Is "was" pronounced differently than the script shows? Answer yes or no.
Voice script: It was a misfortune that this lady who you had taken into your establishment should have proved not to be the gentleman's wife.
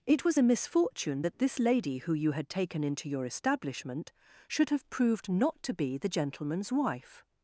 no